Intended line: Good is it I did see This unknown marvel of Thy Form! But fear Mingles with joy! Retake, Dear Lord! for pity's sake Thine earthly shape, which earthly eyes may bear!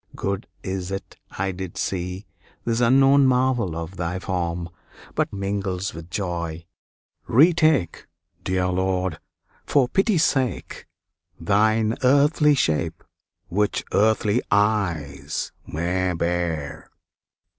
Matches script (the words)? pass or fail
fail